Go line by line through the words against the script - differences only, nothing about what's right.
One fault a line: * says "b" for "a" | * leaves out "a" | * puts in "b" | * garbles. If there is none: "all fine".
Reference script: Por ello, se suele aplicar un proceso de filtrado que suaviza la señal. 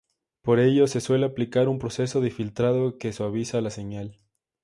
all fine